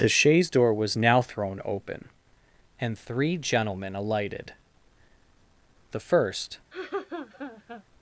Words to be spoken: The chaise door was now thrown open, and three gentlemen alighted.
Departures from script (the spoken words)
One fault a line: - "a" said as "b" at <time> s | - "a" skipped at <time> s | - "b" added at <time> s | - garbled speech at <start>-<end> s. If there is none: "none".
- "The first" added at 5.9 s